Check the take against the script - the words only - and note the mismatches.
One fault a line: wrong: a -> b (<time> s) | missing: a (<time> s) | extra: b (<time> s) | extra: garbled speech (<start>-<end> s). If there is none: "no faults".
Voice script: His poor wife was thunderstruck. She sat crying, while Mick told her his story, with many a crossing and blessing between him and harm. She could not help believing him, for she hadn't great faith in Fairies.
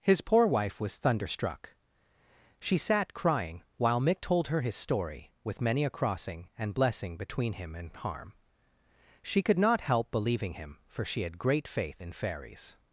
wrong: hadn't -> had (11.2 s)